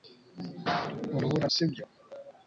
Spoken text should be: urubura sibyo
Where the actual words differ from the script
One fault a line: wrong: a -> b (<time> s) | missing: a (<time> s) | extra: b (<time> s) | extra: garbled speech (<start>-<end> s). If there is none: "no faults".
no faults